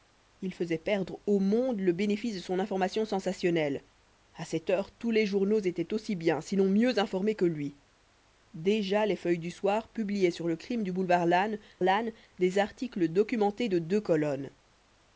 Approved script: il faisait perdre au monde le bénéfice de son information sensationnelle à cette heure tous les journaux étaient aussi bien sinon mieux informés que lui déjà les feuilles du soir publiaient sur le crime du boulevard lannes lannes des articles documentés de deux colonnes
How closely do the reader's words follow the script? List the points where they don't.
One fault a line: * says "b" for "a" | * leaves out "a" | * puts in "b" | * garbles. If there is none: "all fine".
all fine